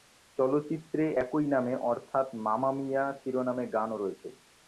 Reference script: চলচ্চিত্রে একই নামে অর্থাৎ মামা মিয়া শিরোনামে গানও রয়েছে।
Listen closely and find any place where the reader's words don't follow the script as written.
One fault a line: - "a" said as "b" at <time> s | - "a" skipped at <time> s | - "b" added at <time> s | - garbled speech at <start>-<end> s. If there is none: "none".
none